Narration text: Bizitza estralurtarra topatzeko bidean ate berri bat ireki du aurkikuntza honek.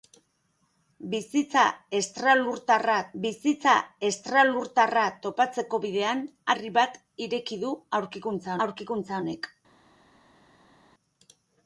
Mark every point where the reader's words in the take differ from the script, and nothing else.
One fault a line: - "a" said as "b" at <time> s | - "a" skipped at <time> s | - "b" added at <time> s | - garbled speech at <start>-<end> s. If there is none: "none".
- "bizitza estralurtarra" added at 3.2 s
- "ate" skipped at 6.3 s
- "aurkikuntza" added at 8.7 s